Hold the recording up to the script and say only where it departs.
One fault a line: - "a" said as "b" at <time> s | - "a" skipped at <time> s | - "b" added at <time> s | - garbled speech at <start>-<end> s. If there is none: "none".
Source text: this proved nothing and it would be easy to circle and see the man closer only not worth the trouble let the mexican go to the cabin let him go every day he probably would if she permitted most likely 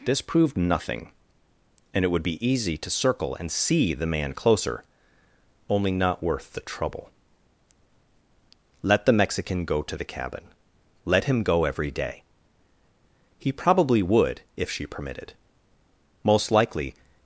none